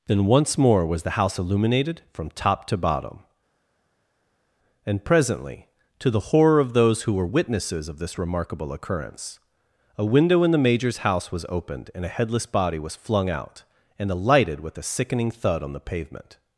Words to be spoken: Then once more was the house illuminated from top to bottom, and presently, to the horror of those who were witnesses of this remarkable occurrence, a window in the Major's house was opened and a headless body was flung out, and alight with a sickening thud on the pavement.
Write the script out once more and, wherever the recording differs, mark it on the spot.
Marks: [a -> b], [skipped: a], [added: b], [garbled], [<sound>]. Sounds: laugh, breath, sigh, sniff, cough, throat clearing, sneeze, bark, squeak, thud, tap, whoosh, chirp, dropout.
Then once more was the house illuminated from top to bottom, and presently, to the horror of those who were witnesses of this remarkable occurrence, a window in the Major's house was opened and a headless body was flung out, and [alight -> alighted] with a sickening thud on the pavement.